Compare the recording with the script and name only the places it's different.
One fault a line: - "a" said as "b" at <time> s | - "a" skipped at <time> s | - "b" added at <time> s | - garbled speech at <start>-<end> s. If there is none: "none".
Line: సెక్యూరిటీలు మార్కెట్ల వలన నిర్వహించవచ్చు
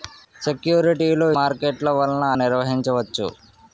none